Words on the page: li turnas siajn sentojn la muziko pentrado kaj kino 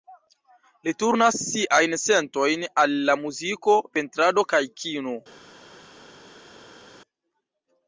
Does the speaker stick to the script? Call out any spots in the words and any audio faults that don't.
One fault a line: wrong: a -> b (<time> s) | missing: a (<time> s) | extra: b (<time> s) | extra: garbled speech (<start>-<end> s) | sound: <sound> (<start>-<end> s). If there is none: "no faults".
extra: al (2.9 s)